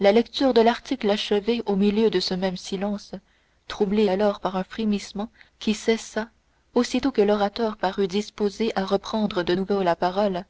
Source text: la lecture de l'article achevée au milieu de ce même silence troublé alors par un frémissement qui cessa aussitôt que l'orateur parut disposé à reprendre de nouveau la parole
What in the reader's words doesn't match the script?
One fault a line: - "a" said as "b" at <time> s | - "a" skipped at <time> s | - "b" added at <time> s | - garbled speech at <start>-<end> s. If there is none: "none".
none